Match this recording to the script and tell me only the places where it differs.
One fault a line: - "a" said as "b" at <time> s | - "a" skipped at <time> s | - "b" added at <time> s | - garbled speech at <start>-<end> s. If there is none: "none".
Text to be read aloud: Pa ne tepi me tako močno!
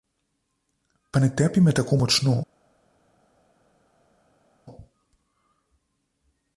none